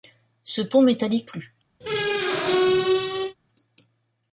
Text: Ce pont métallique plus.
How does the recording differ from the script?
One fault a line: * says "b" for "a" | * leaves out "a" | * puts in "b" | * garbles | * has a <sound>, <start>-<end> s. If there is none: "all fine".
* has a squeak, 1.8-3.4 s